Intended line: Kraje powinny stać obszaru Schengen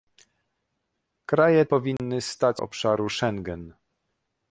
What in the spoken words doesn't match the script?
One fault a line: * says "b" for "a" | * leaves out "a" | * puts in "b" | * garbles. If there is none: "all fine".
all fine